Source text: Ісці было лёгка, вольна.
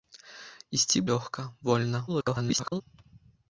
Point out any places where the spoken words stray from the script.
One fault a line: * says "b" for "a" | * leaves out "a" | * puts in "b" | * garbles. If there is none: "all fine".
* leaves out "было"
* garbles